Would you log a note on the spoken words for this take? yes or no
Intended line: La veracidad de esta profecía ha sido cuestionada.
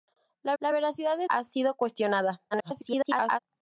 yes